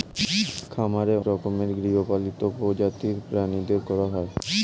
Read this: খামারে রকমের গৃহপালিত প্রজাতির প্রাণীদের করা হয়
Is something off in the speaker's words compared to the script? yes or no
no